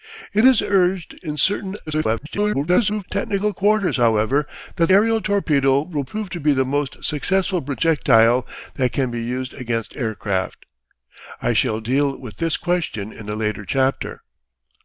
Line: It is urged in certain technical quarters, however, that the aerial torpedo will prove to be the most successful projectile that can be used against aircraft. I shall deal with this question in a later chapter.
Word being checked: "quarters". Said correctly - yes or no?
yes